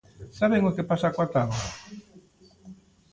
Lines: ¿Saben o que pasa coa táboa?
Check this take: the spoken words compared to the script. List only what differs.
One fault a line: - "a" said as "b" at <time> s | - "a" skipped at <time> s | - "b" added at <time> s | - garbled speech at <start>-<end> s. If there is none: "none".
none